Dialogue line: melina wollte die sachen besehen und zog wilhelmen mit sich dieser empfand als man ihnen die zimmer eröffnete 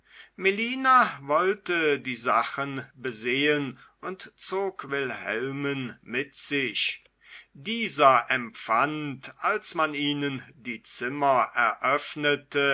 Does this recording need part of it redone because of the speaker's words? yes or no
no